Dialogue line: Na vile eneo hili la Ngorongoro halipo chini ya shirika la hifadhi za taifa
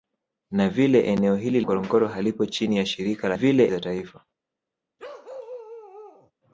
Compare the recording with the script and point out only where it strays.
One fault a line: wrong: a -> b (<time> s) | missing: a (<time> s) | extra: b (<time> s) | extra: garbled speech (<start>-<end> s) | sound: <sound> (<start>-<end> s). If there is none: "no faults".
missing: la (1.6 s)
wrong: hifadhi -> vile (3.3 s)
sound: bark (5.0-6.3 s)